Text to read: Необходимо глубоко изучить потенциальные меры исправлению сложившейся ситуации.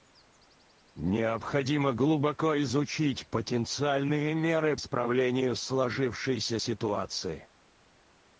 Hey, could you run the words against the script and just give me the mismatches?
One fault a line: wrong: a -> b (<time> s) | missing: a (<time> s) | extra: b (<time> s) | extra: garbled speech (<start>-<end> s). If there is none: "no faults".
no faults